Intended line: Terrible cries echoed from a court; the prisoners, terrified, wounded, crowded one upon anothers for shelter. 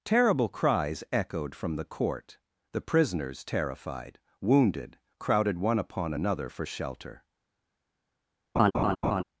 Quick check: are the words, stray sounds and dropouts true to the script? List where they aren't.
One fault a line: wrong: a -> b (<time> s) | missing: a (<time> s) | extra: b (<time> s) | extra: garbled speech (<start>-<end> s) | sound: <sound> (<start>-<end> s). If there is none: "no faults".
wrong: a -> the (1.8 s)
wrong: anothers -> another (6.1 s)
sound: laugh (8.5-9.2 s)